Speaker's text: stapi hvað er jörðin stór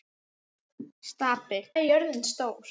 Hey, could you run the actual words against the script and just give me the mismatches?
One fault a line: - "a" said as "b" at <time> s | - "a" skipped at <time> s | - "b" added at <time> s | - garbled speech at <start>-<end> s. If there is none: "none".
- "hvað" skipped at 1.6 s